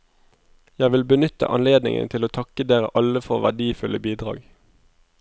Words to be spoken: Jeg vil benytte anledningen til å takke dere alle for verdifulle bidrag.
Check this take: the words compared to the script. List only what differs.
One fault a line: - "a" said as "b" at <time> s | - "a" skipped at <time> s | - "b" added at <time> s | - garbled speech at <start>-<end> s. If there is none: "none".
none